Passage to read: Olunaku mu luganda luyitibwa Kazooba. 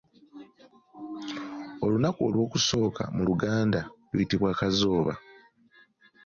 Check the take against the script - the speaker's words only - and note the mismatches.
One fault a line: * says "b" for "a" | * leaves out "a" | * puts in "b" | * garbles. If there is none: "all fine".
* puts in "olw'okusooka"